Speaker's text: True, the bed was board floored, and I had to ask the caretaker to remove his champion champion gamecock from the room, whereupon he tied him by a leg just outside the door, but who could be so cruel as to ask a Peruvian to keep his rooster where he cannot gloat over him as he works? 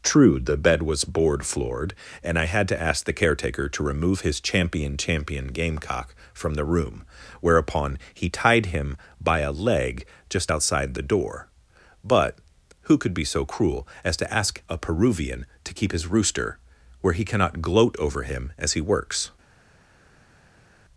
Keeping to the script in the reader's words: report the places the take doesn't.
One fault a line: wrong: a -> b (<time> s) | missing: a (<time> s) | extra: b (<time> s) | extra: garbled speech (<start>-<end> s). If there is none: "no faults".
no faults